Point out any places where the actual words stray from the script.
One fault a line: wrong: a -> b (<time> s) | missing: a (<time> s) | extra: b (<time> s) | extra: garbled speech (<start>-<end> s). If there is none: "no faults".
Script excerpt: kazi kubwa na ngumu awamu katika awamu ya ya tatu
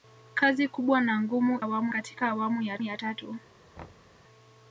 no faults